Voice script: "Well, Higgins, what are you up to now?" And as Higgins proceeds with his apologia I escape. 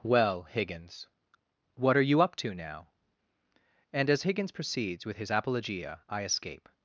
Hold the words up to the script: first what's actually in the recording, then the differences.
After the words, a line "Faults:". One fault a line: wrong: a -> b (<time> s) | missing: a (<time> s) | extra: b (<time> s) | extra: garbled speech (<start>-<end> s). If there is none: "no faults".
"Well, Higgins, what are you up to now?" And as Higgins proceeds with his apologia I escape.
Faults:
no faults